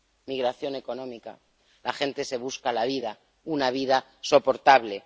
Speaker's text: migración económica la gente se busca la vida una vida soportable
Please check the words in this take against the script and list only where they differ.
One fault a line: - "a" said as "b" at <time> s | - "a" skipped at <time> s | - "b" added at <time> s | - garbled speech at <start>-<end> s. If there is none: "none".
none